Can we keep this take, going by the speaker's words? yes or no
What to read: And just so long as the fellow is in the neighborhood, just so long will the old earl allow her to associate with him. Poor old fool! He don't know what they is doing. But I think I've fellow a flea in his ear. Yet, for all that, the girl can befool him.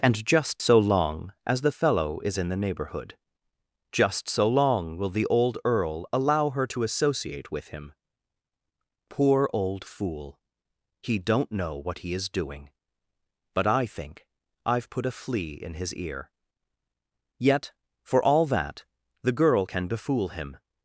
no